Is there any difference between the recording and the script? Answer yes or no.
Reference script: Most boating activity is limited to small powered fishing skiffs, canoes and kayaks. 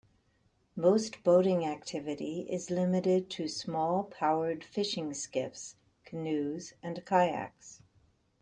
no